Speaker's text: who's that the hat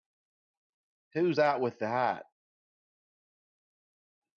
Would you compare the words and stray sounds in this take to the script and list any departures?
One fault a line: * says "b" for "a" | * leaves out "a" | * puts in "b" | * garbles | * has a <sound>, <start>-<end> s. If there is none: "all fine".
* puts in "with"